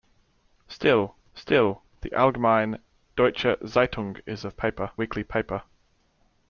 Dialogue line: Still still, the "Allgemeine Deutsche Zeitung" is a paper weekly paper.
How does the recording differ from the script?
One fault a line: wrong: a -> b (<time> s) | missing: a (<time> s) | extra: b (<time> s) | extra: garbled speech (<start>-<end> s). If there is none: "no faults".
no faults